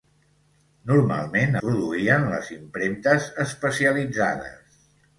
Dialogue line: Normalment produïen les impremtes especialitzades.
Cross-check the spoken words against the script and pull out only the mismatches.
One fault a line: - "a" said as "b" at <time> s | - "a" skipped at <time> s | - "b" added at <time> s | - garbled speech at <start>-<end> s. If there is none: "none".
none